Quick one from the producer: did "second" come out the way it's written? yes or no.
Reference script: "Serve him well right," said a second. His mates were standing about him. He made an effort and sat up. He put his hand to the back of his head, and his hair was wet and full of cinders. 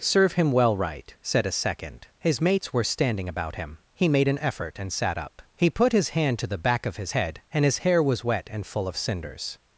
yes